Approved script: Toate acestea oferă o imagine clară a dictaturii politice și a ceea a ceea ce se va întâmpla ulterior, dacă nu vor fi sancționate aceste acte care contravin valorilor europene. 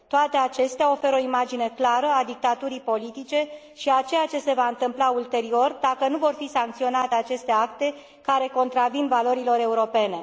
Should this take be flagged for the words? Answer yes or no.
yes